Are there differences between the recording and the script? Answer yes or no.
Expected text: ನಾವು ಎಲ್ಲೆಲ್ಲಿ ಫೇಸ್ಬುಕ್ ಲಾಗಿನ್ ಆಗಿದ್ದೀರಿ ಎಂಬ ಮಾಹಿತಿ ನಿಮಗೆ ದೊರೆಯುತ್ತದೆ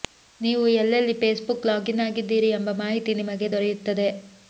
yes